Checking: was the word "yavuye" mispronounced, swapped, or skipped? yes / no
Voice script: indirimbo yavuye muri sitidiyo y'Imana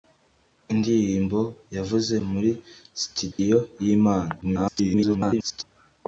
no